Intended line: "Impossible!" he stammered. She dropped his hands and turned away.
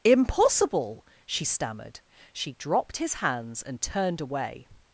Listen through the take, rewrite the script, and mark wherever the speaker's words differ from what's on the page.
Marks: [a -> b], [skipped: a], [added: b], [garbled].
"Impossible!" [he -> she] stammered. She dropped his hands and turned away.